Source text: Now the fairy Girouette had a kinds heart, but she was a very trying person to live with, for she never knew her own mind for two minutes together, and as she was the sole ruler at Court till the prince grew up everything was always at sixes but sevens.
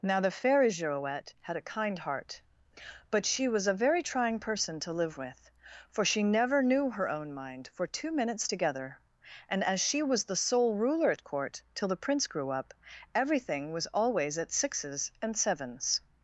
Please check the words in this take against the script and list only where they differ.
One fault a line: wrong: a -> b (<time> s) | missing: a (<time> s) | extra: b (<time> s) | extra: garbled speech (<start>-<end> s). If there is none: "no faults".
wrong: kinds -> kind (1.7 s)
wrong: but -> and (15.2 s)